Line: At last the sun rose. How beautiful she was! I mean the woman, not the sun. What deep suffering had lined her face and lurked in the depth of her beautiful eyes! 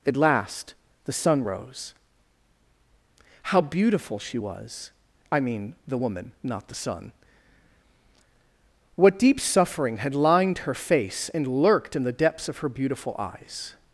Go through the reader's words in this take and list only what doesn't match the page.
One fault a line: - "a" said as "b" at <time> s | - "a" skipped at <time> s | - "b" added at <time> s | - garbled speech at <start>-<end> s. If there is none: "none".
- "depth" said as "depths" at 12.1 s